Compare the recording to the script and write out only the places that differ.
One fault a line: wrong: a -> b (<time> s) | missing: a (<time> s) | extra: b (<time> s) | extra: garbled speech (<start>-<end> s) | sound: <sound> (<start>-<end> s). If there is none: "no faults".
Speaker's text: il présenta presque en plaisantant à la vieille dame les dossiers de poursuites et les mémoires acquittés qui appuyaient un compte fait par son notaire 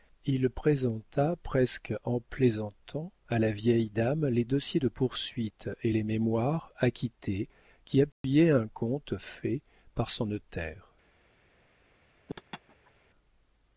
sound: dropout (8.1-8.2 s)
sound: laugh (12.3-12.9 s)